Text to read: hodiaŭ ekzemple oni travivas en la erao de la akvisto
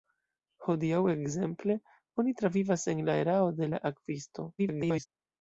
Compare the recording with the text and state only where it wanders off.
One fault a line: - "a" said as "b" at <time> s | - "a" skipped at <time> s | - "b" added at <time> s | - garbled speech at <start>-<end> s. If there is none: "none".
- garbled speech at 4.6-5.1 s